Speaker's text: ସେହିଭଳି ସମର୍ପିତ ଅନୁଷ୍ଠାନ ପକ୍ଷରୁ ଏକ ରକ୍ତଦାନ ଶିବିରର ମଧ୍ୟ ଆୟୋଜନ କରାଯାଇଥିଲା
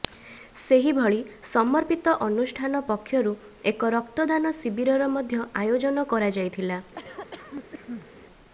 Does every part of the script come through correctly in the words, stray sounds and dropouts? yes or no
no